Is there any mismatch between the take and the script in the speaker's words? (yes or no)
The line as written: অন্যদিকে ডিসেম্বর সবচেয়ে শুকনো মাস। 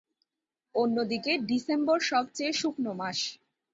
no